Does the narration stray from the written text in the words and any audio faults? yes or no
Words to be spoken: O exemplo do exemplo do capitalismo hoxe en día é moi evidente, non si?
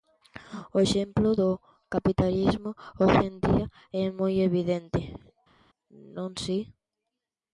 yes